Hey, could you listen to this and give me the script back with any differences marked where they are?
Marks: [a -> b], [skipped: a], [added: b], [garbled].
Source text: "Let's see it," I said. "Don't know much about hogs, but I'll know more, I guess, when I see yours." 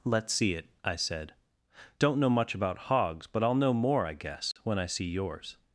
"Let's see it," I said. "Don't know much about hogs, but I'll know more, I guess, when I see yours."